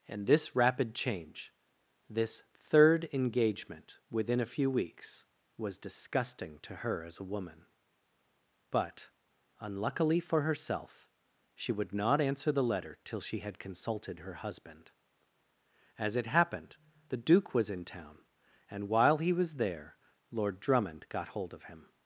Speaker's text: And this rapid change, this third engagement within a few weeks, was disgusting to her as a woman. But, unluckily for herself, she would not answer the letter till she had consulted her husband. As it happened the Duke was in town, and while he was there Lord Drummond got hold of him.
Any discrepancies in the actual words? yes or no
no